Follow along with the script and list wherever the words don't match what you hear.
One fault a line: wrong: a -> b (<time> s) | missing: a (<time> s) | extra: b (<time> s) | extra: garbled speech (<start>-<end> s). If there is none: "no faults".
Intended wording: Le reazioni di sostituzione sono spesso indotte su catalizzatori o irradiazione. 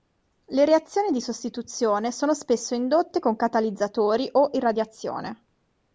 wrong: su -> con (3.2 s)